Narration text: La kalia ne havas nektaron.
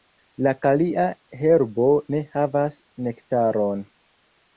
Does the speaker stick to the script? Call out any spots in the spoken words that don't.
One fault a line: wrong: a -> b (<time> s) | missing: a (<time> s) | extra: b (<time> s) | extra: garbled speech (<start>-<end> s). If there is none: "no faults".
extra: herbo (1.4 s)